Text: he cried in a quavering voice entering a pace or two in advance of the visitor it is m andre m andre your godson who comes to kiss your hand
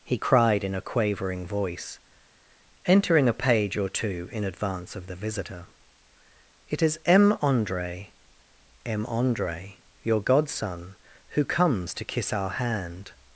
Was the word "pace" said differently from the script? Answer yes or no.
yes